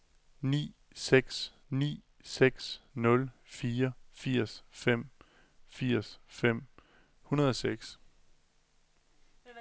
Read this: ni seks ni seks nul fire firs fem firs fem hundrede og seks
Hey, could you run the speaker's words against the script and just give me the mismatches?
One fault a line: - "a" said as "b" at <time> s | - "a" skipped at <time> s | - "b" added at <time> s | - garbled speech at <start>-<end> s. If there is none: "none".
none